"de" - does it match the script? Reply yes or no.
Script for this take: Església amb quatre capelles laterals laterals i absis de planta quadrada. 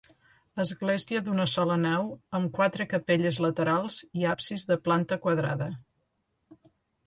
yes